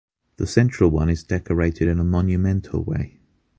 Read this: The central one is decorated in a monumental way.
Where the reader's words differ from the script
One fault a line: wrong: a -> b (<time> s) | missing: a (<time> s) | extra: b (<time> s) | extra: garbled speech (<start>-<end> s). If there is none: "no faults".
no faults